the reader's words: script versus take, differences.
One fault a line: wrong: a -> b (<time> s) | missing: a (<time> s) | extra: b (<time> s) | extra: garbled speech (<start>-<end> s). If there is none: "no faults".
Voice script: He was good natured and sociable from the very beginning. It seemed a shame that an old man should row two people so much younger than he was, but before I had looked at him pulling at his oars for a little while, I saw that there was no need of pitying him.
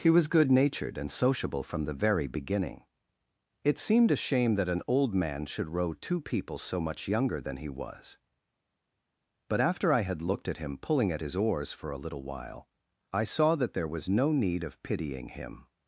wrong: before -> after (9.6 s)